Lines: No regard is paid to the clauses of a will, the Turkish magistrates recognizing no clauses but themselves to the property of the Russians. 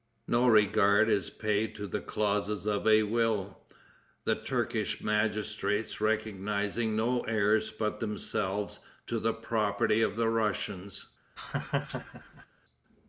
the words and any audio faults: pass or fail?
fail